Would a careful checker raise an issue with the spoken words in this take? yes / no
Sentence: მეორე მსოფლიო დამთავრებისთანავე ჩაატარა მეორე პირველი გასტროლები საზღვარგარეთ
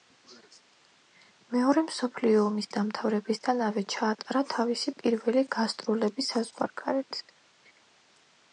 yes